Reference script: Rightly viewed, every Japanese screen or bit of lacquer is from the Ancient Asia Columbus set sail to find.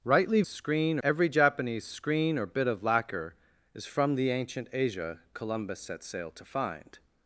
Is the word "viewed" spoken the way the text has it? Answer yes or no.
no